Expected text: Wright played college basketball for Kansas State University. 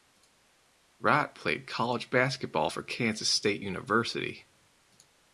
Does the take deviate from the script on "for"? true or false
false